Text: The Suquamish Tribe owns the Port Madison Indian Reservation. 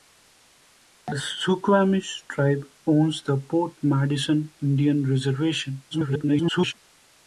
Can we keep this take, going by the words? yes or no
no